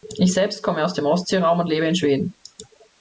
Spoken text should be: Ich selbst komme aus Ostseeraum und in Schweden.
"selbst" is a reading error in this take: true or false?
false